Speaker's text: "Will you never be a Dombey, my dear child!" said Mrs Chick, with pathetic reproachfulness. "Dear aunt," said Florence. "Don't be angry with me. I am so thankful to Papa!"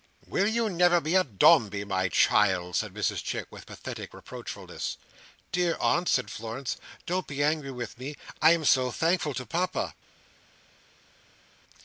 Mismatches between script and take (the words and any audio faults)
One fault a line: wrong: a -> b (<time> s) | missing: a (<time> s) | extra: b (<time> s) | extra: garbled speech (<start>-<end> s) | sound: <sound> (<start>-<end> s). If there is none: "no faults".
missing: dear (2.1 s)